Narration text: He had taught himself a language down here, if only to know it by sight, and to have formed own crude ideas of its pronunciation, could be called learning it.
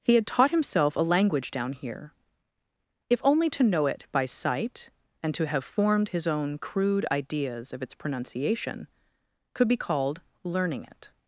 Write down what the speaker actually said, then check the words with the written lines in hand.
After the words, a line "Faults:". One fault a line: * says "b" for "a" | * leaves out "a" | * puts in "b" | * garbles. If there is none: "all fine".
He had taught himself a language down here, if only to know it by sight, and to have formed his own crude ideas of its pronunciation, could be called learning it.
Faults:
* puts in "his"